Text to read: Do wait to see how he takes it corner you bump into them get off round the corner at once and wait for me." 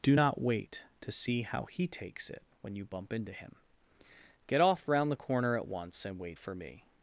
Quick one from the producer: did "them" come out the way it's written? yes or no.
no